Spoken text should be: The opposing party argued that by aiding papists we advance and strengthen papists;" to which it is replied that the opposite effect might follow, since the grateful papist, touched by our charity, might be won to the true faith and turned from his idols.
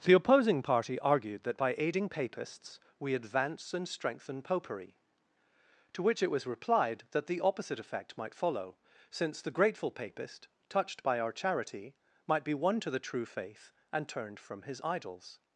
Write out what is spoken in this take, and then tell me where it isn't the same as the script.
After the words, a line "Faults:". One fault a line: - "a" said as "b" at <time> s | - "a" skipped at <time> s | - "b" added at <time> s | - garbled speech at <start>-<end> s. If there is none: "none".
The opposing party argued that by aiding papists we advance and strengthen popery;" to which it was replied that the opposite effect might follow, since the grateful papist, touched by our charity, might be won to the true faith and turned from his idols.
Faults:
- "papists" said as "popery" at 4.4 s
- "is" said as "was" at 6.3 s